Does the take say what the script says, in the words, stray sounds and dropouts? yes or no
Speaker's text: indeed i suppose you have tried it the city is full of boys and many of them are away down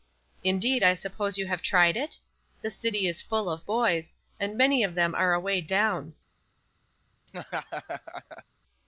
no